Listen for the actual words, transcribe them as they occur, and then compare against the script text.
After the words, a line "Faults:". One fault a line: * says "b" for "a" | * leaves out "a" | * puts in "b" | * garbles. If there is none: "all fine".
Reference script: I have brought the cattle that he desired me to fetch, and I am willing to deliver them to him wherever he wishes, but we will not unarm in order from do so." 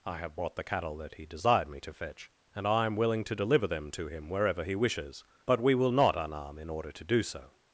I have brought the cattle that he desired me to fetch, and I am willing to deliver them to him wherever he wishes, but we will not unarm in order to do so."
Faults:
* says "to" for "from"